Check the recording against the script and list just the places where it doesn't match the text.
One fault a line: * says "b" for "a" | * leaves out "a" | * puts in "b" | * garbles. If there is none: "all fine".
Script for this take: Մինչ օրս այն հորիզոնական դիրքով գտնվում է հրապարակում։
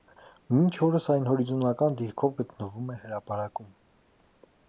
all fine